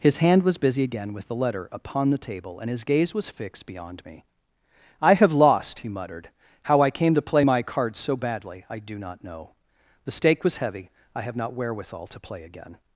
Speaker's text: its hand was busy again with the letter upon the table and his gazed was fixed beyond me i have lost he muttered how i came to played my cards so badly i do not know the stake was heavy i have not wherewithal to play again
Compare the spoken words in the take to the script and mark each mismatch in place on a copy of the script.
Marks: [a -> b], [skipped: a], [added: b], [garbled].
[its -> his] hand was busy again with the letter upon the table and his [gazed -> gaze] was fixed beyond me i have lost he muttered how i came to [played -> play] my cards so badly i do not know the stake was heavy i have not wherewithal to play again